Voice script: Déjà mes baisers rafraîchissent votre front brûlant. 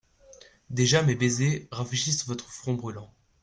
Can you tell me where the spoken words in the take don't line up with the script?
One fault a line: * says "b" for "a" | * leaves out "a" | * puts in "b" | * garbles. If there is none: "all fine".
all fine